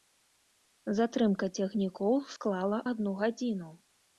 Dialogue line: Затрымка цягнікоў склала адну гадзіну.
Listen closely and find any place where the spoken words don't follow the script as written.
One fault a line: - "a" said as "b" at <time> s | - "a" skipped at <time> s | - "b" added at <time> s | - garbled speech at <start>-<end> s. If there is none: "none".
none